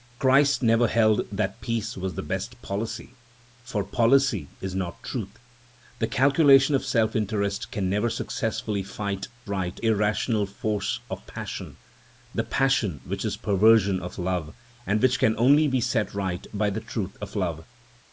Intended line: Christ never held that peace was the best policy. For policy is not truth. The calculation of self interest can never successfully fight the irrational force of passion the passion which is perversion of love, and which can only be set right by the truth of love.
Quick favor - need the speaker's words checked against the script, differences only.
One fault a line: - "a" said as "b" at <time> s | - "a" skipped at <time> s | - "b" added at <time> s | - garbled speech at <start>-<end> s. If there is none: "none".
- "the" said as "right" at 9.5 s